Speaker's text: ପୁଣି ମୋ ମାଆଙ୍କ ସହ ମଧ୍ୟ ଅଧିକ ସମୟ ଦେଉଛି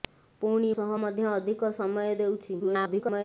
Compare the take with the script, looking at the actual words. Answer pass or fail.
fail